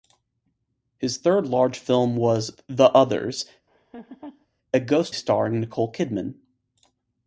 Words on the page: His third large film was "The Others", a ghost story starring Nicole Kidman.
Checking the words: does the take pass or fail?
fail